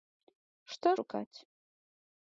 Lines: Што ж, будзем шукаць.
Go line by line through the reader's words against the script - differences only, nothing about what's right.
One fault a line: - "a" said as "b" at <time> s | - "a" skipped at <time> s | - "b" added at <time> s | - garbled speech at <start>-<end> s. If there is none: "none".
- "ж будзем" skipped at 0.9 s